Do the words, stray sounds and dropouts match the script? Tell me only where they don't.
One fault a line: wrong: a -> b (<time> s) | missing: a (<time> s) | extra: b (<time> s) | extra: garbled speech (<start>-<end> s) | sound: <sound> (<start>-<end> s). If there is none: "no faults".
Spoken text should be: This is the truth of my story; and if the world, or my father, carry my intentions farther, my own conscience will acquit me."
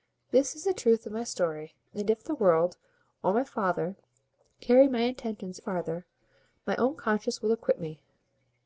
no faults